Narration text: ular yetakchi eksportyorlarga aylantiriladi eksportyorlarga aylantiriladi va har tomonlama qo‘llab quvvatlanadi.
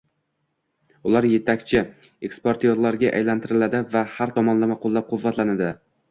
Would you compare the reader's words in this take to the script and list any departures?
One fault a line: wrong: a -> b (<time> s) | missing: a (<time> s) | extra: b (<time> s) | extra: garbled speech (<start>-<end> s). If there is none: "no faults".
missing: eksportyorlarga aylantiriladi (3.8 s)